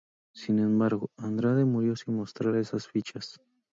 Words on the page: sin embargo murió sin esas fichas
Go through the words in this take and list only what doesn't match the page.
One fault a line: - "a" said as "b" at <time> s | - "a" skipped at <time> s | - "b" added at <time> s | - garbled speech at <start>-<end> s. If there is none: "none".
- "andrade" added at 1.1 s
- "mostrar" added at 2.1 s